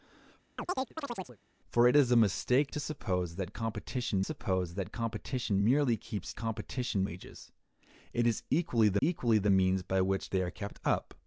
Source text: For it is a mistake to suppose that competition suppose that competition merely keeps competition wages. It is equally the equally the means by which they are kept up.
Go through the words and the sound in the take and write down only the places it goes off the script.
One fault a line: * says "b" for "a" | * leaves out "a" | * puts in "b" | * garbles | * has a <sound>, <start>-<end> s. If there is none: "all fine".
* has a chirp, 0.6-1.4 s